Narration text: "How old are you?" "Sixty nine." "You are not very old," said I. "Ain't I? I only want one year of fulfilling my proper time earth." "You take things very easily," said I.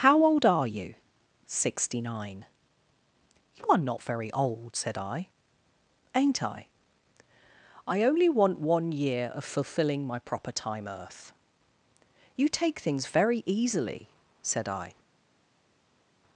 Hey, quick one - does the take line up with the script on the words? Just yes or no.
yes